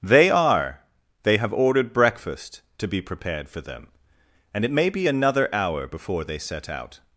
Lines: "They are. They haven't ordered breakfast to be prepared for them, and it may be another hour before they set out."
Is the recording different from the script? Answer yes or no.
yes